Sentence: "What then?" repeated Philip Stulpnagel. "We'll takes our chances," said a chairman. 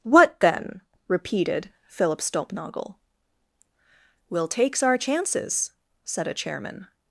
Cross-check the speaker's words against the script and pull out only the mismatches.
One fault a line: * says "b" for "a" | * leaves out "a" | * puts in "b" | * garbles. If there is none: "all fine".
all fine